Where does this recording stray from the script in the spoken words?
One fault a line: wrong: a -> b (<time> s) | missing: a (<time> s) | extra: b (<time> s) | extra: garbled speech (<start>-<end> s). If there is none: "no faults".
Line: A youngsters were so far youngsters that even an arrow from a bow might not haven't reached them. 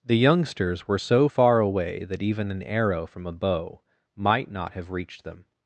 wrong: A -> The (0.0 s)
wrong: youngsters -> away (1.6 s)
wrong: haven't -> have (4.7 s)